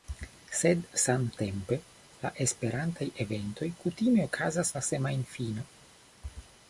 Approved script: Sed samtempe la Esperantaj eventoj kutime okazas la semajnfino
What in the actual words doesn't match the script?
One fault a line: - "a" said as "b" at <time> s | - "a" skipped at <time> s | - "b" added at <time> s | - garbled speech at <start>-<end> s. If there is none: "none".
none